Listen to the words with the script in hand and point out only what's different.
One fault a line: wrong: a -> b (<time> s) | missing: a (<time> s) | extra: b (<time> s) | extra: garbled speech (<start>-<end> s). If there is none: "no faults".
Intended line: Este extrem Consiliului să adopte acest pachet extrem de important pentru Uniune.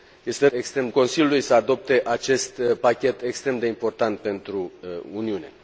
no faults